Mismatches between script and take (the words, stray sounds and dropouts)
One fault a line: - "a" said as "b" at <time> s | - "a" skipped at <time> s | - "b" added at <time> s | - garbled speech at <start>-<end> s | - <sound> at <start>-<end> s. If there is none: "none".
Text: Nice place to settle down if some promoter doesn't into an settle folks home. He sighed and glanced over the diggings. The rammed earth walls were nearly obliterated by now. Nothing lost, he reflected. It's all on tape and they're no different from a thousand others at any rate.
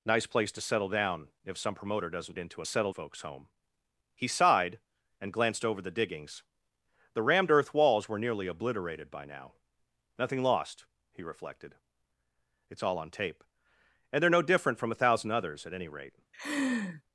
- laugh at 16.3-17.0 s